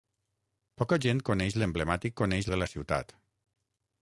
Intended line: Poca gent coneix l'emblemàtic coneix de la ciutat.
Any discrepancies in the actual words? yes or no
no